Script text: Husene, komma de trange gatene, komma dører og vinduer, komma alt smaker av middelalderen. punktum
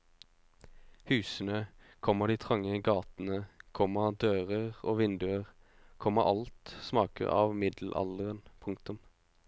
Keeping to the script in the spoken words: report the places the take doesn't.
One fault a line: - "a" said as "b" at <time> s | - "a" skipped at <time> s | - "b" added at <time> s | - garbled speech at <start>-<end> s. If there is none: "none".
none